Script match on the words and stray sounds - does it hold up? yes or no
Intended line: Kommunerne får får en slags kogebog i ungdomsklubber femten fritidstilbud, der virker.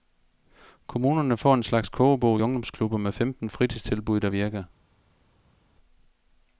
no